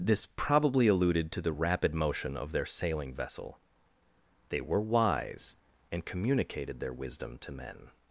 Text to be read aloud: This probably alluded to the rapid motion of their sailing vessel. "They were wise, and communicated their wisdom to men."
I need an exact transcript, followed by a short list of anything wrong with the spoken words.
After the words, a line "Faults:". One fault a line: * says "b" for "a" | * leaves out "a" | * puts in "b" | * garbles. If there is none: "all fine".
This probably alluded to the rapid motion of their sailing vessel. "They were wise, and communicated their wisdom to men."
Faults:
all fine